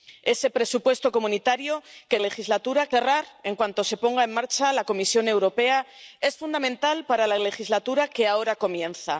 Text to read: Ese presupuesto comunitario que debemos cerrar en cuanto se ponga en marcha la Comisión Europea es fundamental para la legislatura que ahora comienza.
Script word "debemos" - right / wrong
wrong